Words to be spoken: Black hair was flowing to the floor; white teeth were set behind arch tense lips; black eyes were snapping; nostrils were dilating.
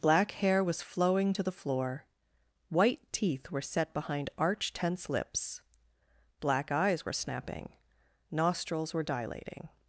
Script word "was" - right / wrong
right